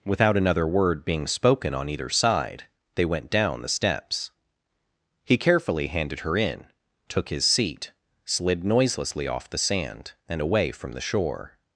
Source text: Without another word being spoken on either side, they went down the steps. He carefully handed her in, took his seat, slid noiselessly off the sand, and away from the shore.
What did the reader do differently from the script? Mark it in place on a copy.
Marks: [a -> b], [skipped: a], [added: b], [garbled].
Without another word being spoken on either side, they went down the steps. He carefully handed her in, took his seat, slid noiselessly off the sand, and away from the shore.